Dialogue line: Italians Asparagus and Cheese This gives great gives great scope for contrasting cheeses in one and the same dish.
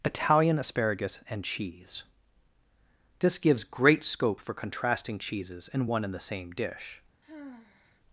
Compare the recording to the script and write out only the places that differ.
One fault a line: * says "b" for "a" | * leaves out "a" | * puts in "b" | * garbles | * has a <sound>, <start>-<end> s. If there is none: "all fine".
* says "Italian" for "Italians"
* leaves out "gives great"
* has a sigh, 7.2-8.0 s